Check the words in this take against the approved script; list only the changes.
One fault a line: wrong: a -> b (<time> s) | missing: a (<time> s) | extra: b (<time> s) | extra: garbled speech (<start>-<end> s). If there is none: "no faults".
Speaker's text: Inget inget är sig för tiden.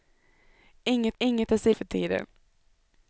no faults